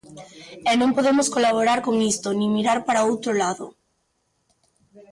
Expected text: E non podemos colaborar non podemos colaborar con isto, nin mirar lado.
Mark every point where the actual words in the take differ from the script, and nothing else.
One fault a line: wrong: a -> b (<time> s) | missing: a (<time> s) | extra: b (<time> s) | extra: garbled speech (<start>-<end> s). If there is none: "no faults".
missing: non podemos colaborar (1.8 s)
extra: para outro (2.9 s)